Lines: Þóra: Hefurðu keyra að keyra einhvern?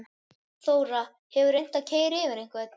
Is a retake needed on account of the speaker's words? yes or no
yes